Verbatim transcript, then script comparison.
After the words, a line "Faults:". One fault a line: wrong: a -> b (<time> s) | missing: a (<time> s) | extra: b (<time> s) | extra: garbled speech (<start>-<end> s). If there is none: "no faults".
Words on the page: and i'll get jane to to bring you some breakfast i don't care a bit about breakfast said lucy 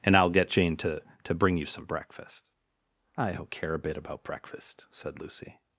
and i'll get jane to to bring you some breakfast i don't care a bit about breakfast said lucy
Faults:
no faults